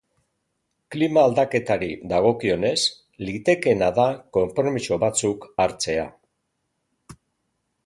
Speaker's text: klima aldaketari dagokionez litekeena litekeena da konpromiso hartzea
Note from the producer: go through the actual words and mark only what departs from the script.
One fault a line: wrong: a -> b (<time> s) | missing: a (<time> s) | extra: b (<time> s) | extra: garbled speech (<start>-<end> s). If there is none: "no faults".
missing: litekeena (3.9 s)
extra: batzuk (5.0 s)